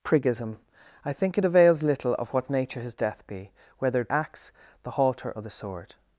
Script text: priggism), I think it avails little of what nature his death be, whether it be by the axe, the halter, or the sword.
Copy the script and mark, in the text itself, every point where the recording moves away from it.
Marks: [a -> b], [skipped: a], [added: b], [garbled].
priggism), I think it avails little of what nature his death be, whether it [skipped: be by the] axe, the halter, or the sword.